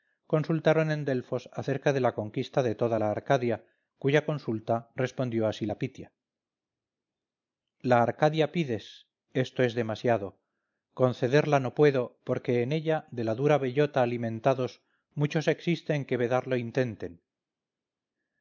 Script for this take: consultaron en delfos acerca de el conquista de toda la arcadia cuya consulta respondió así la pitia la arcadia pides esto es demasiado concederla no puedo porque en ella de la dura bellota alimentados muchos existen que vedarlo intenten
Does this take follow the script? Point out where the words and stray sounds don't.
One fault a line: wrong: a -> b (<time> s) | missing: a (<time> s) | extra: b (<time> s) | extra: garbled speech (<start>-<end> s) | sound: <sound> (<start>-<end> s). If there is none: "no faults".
wrong: el -> la (2.0 s)